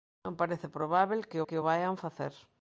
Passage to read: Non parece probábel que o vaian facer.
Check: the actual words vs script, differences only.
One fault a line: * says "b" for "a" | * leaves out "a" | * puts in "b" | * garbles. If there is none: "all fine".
* puts in "que"